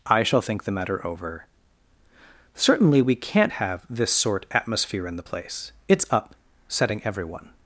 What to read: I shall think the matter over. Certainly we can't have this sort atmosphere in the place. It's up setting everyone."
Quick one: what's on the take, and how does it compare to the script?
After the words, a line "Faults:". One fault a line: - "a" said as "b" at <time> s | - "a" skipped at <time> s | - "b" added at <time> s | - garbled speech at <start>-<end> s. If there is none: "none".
I shall think the matter over. Certainly we can't have this sort atmosphere in the place. It's up setting everyone."
Faults:
none